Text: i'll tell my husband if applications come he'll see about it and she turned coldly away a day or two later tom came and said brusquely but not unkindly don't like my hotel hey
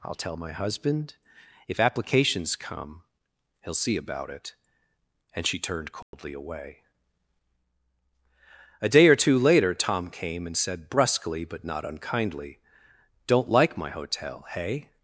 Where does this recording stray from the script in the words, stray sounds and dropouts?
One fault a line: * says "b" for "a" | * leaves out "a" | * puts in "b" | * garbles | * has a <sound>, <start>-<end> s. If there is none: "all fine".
* has a dropout, 6.0-6.1 s